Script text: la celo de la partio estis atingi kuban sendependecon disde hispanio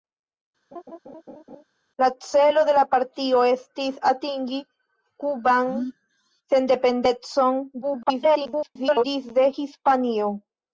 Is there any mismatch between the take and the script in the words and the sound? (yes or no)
yes